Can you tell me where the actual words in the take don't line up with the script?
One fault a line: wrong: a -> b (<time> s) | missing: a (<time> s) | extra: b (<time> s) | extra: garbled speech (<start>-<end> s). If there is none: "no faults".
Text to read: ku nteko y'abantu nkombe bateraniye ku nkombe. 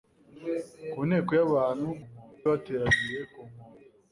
no faults